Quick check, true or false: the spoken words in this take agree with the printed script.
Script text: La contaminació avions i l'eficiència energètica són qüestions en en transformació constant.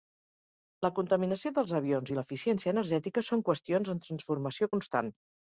false